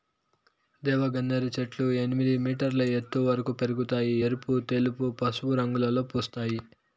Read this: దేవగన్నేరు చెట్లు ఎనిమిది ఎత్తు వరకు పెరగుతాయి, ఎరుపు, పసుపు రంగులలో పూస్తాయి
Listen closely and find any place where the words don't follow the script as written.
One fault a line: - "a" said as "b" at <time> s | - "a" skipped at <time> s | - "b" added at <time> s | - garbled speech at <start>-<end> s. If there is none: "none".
- "మీటర్ల" added at 2.4 s
- "తెలుపు" added at 4.7 s